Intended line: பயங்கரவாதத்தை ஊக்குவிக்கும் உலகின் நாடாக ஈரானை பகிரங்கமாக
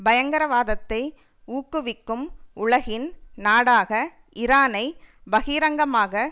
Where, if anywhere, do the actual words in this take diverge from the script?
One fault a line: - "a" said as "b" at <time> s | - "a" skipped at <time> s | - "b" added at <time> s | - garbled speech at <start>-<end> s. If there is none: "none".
none